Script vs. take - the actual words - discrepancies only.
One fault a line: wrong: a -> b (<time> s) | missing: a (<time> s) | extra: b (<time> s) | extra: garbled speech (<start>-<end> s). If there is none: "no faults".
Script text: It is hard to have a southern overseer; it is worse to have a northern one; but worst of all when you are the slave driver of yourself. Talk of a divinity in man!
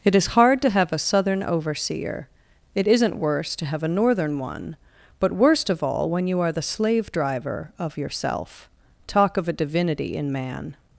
wrong: is -> isn't (2.9 s)